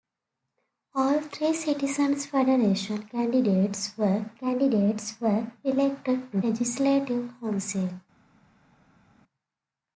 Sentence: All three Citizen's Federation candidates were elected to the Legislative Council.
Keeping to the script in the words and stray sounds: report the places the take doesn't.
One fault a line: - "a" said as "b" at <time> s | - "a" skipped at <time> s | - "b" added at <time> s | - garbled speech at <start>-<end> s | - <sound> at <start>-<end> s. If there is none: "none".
- "candidates were" added at 4.3 s
- "the" skipped at 6.4 s